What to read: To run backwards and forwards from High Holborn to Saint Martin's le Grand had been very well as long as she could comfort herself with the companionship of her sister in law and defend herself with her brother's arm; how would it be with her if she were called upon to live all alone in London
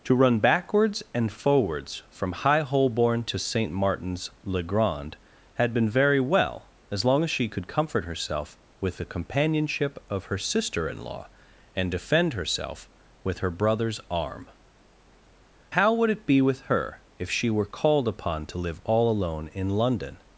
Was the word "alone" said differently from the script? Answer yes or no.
no